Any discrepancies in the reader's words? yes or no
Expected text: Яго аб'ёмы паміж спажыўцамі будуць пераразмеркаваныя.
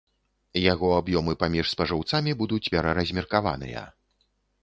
no